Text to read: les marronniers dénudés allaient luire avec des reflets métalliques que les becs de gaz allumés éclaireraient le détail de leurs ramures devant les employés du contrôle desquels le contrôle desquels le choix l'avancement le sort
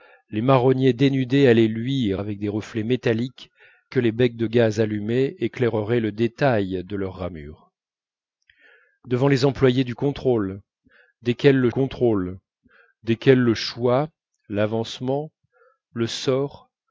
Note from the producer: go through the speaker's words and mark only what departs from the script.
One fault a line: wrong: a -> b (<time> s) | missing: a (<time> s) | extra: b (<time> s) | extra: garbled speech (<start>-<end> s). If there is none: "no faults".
no faults